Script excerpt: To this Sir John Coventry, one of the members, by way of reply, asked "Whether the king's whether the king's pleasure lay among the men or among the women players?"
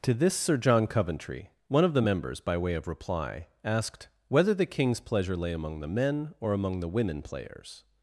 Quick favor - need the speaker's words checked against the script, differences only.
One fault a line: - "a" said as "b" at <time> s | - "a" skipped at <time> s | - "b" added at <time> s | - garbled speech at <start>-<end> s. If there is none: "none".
- "whether the king's" skipped at 5.0 s